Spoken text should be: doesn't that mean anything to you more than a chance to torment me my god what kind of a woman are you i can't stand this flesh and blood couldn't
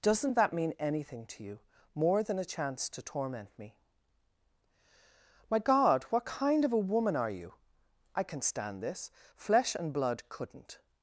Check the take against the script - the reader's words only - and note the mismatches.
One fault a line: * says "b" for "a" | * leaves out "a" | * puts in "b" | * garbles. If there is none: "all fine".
* says "can" for "can't"